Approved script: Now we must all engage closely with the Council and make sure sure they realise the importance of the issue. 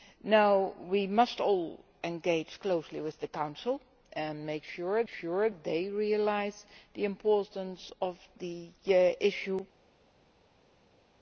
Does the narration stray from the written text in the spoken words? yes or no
no